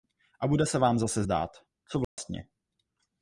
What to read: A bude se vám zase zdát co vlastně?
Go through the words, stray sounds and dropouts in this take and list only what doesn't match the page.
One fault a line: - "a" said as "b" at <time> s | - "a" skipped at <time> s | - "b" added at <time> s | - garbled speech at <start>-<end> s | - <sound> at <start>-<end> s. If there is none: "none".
- dropout at 2.0-2.2 s